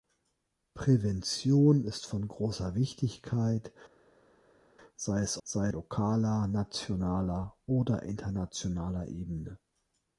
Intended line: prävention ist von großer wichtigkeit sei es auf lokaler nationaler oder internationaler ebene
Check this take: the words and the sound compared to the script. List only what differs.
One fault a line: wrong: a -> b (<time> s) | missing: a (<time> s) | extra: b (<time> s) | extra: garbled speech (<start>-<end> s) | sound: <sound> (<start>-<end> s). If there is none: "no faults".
wrong: auf -> sei (5.4 s)